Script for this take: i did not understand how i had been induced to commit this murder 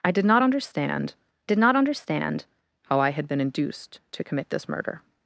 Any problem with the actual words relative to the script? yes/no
yes